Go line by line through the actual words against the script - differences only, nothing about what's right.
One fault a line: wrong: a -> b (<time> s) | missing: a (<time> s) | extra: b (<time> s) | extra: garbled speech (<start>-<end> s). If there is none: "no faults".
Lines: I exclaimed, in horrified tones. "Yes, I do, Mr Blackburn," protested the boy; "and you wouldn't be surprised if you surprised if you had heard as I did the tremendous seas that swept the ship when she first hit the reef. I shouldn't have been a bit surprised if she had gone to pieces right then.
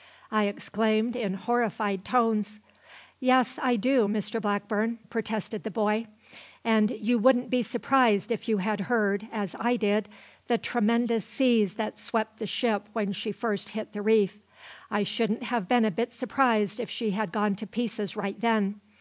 missing: surprised if you (8.6 s)